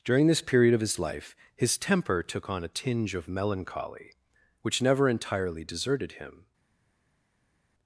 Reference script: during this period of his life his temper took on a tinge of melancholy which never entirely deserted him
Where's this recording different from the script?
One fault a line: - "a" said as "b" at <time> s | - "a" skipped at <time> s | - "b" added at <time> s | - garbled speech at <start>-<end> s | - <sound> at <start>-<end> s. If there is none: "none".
none